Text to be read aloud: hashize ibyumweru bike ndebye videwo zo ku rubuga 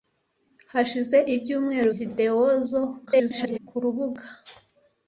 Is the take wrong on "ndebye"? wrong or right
wrong